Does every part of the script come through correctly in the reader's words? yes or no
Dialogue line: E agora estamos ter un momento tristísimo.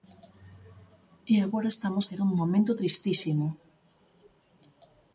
yes